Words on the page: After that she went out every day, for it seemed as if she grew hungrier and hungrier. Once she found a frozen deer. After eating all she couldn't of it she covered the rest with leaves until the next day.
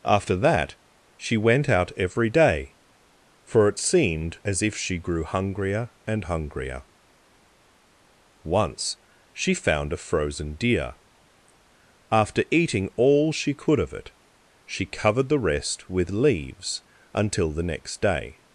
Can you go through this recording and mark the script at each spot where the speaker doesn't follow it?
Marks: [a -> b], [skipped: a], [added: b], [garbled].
After that she went out every day, for it seemed as if she grew hungrier and hungrier. Once she found a frozen deer. After eating all she [couldn't -> could] of it she covered the rest with leaves until the next day.